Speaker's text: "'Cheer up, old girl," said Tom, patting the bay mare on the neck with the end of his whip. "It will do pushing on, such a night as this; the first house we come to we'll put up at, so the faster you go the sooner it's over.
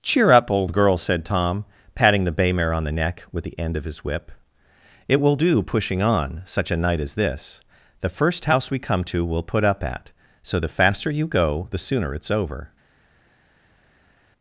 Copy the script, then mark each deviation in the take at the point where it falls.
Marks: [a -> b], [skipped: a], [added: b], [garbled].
"'Cheer up, old girl," said Tom, patting the bay mare on the neck with the end of his whip. "It will do pushing on, such a night as this; the first house we come to we'll put up at, so the faster you go the sooner it's over.